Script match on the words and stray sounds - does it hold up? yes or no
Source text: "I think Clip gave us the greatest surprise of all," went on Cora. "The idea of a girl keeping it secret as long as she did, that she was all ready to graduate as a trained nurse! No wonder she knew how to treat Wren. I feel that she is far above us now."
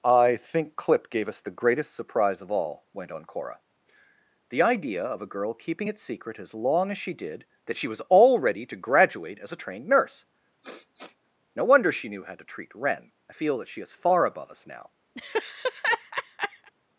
no